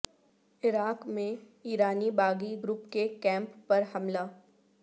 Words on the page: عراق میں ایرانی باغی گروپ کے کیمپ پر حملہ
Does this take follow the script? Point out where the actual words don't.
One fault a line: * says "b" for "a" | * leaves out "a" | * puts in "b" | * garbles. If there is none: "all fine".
all fine